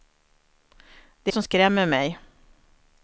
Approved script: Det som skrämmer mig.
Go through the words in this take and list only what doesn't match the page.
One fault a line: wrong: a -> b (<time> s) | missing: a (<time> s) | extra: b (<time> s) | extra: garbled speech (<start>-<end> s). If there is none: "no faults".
no faults